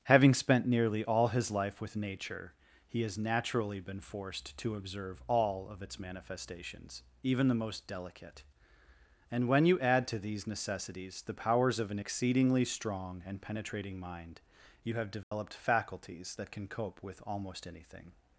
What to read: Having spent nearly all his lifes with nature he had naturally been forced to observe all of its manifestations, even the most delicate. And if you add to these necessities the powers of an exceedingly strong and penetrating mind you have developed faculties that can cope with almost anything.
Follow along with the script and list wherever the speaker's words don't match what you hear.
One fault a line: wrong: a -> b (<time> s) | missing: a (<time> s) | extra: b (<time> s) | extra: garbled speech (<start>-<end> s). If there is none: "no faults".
wrong: lifes -> life (1.5 s)
wrong: had -> has (3.0 s)
wrong: if -> when (9.5 s)